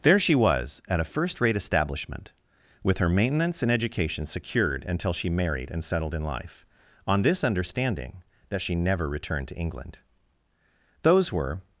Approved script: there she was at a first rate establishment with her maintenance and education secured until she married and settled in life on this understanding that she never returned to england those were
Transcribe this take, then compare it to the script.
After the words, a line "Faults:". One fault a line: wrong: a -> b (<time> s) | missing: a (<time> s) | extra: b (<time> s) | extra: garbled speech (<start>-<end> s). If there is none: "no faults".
there she was at a first rate establishment with her maintenance and education secured until she married and settled in life on this understanding that she never returned to england those were
Faults:
no faults